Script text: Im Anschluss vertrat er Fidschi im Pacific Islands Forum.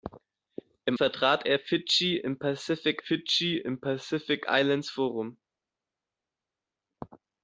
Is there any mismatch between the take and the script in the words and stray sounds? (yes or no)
yes